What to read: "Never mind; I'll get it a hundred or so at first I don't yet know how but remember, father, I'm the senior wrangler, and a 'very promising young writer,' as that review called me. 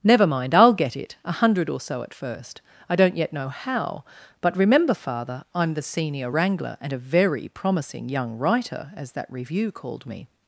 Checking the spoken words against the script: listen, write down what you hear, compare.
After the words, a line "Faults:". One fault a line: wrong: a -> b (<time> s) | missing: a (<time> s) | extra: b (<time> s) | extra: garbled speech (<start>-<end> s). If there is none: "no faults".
"Never mind; I'll get it a hundred or so at first I don't yet know how but remember, father, I'm the senior wrangler, and a 'very promising young writer,' as that review called me.
Faults:
no faults